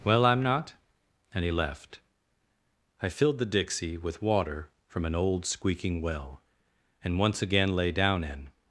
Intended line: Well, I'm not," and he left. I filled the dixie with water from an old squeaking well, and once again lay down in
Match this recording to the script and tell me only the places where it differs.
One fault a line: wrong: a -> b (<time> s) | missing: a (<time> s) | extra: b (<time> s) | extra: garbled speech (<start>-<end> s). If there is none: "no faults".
no faults